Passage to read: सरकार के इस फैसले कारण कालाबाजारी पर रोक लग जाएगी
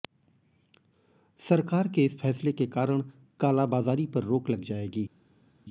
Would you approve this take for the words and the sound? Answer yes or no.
no